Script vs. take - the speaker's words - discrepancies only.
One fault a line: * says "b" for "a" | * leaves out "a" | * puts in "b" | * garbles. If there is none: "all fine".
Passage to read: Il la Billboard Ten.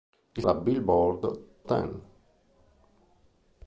all fine